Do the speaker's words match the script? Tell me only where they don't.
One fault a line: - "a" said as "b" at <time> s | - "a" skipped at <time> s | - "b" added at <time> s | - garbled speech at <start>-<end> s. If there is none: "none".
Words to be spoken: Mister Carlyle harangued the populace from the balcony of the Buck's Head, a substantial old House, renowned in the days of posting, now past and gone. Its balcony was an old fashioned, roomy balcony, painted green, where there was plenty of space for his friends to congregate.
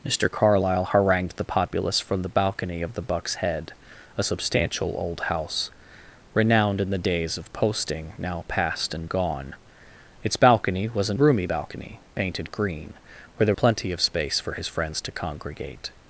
- "old fashioned" skipped at 11.2 s
- "was" skipped at 13.5 s